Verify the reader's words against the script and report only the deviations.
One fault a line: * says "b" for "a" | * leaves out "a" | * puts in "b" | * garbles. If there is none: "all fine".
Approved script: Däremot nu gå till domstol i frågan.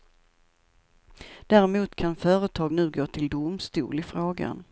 * puts in "kan företag"